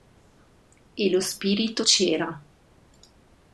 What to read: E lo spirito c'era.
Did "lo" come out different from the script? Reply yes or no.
no